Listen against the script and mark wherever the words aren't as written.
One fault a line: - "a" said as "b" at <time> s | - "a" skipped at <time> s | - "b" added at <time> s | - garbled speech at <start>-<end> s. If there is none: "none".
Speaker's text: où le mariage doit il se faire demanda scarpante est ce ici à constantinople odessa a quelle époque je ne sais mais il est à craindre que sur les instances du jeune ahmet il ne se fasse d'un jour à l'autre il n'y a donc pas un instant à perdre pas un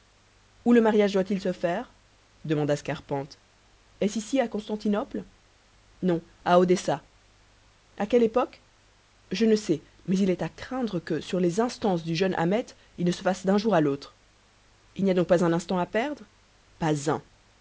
- "non à" added at 6.0 s